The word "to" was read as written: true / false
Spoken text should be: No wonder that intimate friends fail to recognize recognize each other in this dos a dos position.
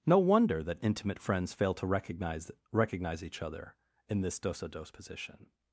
true